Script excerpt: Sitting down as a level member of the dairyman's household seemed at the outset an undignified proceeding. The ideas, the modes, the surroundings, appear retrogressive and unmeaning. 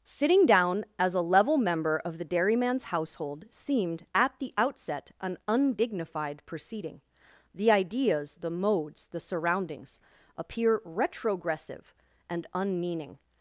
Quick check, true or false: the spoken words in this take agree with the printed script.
true